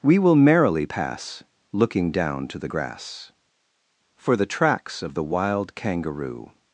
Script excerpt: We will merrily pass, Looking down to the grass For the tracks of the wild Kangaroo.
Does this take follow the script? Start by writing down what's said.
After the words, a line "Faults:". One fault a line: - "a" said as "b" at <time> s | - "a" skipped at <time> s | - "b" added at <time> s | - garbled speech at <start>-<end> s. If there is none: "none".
We will merrily pass, Looking down to the grass For the tracks of the wild Kangaroo.
Faults:
none